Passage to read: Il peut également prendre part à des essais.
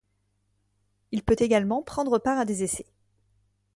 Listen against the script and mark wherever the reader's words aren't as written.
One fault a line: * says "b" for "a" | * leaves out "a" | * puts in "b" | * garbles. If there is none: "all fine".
all fine